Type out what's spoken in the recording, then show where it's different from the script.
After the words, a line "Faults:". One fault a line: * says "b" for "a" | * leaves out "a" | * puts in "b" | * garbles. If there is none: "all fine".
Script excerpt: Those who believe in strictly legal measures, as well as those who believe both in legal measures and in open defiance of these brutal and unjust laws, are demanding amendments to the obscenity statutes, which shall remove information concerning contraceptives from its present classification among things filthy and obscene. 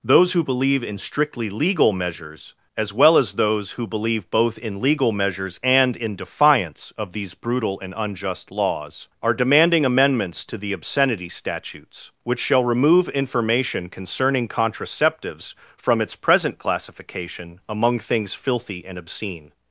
Those who believe in strictly legal measures, as well as those who believe both in legal measures and in defiance of these brutal and unjust laws, are demanding amendments to the obscenity statutes, which shall remove information concerning contraceptives from its present classification among things filthy and obscene.
Faults:
* leaves out "open"